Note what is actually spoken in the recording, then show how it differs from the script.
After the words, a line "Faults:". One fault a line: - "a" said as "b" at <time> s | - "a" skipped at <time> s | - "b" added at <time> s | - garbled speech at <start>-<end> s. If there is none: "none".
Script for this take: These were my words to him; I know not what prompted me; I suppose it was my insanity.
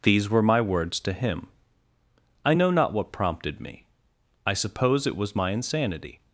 These were my words to him; I know not what prompted me; I suppose it was my insanity.
Faults:
none